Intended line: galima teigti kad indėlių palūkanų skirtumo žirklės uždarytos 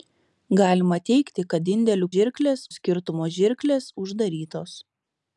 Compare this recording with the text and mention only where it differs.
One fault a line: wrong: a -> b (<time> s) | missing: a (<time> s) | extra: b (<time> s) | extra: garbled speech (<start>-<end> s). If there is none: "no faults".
wrong: palūkanų -> žirklės (2.1 s)